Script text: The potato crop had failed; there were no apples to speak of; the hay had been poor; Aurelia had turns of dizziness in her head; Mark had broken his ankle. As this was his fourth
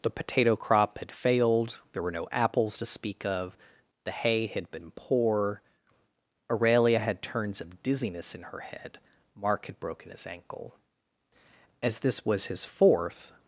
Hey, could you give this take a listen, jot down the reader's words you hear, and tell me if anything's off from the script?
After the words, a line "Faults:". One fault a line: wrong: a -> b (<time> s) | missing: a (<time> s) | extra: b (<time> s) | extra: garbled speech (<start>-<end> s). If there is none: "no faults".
The potato crop had failed; there were no apples to speak of; the hay had been poor; Aurelia had turns of dizziness in her head; Mark had broken his ankle. As this was his fourth
Faults:
no faults